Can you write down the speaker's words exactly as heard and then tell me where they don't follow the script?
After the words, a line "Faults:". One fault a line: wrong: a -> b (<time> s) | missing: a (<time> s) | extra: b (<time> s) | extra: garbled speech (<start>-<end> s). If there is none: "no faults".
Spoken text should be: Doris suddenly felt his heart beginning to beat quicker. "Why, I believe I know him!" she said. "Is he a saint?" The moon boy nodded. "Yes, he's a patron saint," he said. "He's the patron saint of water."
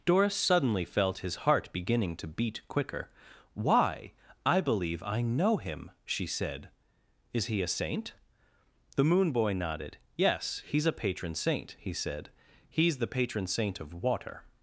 Doris suddenly felt his heart beginning to beat quicker. "Why, I believe I know him!" she said. "Is he a saint?" The moon boy nodded. "Yes, he's a patron saint," he said. "He's the patron saint of water."
Faults:
no faults